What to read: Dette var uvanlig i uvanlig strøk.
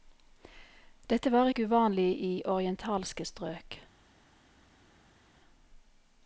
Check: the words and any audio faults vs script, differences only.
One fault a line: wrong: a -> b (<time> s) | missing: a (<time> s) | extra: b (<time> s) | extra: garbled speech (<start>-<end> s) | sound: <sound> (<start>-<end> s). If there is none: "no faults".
extra: ikke (1.5 s)
wrong: uvanlig -> orientalske (2.4 s)